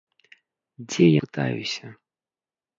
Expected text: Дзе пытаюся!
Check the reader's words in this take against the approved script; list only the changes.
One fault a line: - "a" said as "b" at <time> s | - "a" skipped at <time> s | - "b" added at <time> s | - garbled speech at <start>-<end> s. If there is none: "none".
none